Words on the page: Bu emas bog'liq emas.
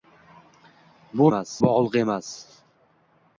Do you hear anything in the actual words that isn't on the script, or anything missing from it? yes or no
no